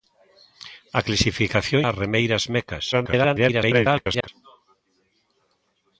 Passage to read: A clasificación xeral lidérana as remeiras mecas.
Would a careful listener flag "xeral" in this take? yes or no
yes